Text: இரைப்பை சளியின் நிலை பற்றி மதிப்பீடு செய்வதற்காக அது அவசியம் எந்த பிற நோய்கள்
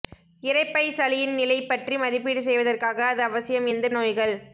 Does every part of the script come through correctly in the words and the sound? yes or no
no